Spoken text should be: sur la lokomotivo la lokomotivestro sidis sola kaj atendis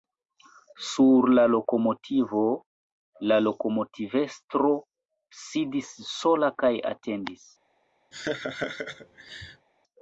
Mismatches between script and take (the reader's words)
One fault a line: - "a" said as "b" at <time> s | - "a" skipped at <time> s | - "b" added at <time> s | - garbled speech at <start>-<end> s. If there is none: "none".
none